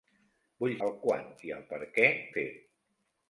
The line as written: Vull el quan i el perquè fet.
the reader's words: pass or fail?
pass